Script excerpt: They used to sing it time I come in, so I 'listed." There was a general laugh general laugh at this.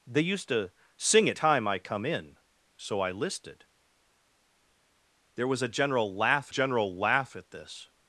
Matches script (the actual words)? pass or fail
pass